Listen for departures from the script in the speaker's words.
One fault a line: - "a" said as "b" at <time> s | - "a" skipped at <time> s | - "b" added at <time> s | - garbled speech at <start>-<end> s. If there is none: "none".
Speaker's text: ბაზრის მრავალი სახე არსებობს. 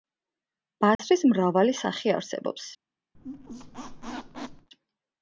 none